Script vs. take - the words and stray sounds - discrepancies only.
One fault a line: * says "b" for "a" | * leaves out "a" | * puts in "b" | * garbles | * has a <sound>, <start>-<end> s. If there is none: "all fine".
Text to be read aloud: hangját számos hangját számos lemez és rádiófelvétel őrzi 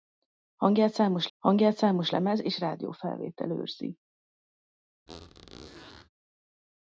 * has a squeak, 5.1-6.1 s